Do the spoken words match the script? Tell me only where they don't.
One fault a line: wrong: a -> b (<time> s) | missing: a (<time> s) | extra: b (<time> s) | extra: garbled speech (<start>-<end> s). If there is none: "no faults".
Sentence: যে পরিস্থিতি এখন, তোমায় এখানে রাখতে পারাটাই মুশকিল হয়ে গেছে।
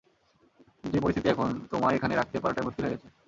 no faults